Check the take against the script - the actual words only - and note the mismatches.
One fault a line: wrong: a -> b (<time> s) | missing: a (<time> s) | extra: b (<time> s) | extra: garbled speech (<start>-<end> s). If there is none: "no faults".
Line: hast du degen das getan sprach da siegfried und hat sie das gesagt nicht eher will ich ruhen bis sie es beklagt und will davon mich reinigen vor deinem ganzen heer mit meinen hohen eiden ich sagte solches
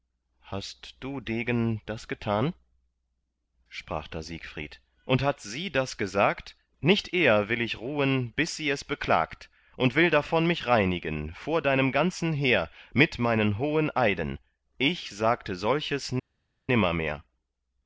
no faults